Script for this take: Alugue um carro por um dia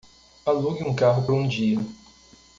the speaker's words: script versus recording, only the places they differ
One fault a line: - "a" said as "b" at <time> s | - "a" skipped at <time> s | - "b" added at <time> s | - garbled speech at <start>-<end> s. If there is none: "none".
- "por" skipped at 1.3 s